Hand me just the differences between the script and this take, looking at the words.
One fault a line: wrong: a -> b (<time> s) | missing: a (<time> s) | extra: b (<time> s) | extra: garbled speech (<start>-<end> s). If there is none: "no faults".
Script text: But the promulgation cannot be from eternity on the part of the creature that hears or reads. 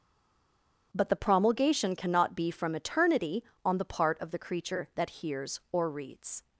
no faults